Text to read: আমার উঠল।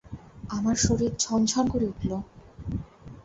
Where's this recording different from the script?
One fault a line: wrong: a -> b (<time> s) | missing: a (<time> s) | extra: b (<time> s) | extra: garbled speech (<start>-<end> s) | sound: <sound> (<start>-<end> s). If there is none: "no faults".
extra: শরীর ঝনঝন করে (0.8 s)